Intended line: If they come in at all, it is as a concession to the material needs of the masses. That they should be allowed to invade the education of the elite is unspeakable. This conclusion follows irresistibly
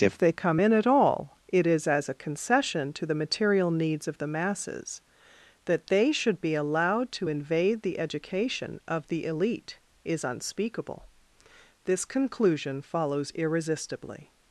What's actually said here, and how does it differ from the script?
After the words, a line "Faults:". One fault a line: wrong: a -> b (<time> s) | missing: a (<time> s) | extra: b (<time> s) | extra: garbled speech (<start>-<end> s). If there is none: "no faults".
If they come in at all, it is as a concession to the material needs of the masses. That they should be allowed to invade the education of the elite is unspeakable. This conclusion follows irresistibly
Faults:
no faults